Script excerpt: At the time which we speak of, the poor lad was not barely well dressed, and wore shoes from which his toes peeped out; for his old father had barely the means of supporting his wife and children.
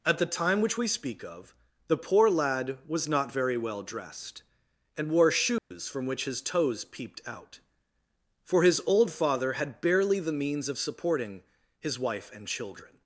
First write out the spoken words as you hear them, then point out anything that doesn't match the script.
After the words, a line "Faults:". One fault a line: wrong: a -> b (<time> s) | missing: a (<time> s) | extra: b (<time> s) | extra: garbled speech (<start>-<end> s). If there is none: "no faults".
At the time which we speak of, the poor lad was not very well dressed, and wore shoes from which his toes peeped out; for his old father had barely the means of supporting his wife and children.
Faults:
wrong: barely -> very (3.3 s)